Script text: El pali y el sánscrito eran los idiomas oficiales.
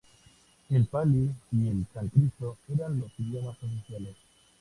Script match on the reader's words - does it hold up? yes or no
yes